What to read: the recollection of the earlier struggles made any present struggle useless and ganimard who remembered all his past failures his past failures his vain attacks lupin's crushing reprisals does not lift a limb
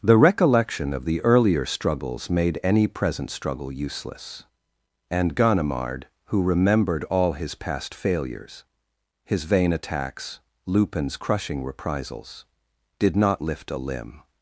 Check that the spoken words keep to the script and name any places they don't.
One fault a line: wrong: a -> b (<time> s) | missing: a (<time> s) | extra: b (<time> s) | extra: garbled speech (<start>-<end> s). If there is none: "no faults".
missing: past failures his (9.4 s)
wrong: does -> did (13.0 s)